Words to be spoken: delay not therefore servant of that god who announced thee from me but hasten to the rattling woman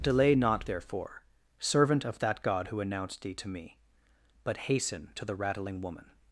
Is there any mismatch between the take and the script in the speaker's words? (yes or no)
yes